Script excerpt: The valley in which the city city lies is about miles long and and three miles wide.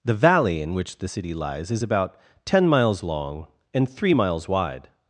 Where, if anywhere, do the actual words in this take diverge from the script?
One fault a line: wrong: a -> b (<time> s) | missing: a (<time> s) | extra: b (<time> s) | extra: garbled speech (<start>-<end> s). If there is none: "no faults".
missing: city (1.3 s)
extra: ten (2.4 s)
missing: and (3.9 s)